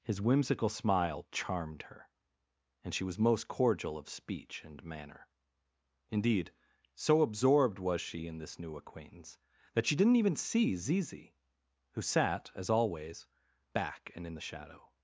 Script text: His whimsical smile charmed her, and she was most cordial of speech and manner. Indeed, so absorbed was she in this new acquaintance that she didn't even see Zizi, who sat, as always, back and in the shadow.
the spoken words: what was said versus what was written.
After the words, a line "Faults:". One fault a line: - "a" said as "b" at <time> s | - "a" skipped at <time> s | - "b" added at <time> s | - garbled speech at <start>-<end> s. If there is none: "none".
His whimsical smile charmed her, and she was most cordial of speech and manner. Indeed, so absorbed was she in this new acquaintance that she didn't even see Zizi, who sat, as always, back and in the shadow.
Faults:
none